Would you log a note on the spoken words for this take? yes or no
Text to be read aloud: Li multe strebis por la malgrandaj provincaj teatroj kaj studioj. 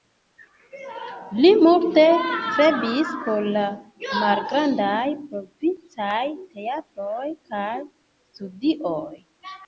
no